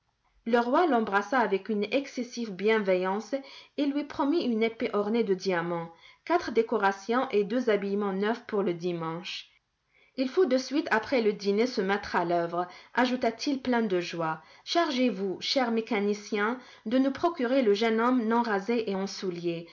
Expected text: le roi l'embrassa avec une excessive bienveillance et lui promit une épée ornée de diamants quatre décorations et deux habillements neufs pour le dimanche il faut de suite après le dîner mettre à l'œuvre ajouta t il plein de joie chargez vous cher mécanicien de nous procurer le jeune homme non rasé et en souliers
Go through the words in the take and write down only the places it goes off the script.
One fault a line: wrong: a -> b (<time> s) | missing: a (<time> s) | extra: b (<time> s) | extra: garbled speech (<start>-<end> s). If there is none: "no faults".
extra: se (11.7 s)